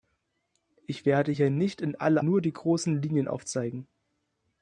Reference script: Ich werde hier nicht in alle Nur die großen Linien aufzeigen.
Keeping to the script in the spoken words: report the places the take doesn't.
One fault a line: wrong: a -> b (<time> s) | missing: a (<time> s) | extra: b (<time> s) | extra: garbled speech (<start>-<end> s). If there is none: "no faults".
no faults